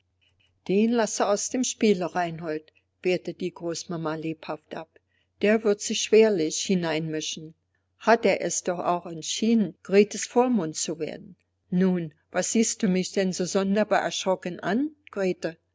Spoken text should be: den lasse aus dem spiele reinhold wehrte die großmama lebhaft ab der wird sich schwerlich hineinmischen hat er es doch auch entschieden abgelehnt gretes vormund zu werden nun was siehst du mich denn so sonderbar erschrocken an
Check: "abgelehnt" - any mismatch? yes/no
yes